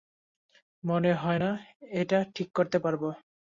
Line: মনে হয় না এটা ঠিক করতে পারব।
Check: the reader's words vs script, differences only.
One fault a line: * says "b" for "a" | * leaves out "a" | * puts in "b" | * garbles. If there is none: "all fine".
all fine